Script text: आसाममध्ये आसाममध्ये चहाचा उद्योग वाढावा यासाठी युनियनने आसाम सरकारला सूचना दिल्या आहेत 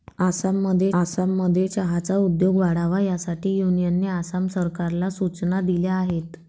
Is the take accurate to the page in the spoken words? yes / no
yes